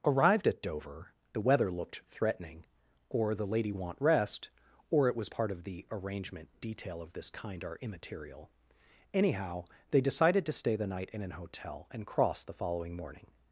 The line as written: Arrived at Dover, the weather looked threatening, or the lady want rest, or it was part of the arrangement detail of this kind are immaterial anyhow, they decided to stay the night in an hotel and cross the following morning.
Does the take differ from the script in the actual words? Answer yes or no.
no